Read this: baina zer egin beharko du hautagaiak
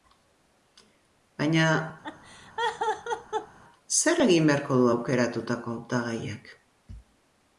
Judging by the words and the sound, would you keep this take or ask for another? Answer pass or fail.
fail